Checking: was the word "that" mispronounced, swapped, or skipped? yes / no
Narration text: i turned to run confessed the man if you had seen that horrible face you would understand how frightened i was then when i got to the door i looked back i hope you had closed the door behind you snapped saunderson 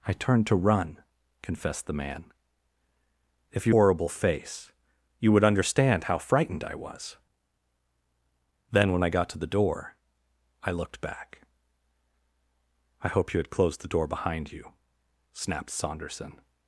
yes